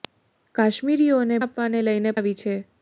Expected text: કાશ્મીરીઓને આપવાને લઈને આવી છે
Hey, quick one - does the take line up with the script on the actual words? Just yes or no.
yes